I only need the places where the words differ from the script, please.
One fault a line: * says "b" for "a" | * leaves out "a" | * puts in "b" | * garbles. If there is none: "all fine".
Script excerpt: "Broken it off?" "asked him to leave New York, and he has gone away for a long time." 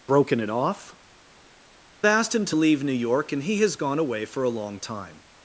all fine